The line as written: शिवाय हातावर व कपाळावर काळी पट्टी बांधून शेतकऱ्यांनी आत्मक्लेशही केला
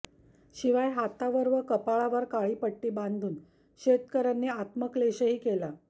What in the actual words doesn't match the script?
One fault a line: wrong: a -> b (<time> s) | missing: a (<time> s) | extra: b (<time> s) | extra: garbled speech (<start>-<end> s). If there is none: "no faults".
no faults